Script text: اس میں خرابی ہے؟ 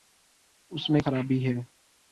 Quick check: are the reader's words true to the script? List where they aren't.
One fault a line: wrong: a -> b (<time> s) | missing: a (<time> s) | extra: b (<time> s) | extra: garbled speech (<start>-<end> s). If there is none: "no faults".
no faults